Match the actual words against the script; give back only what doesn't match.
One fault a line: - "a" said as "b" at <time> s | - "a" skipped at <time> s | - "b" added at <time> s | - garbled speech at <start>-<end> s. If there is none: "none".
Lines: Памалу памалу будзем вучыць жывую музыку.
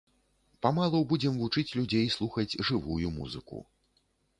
- "памалу" skipped at 1.0 s
- "людзей слухаць" added at 1.8 s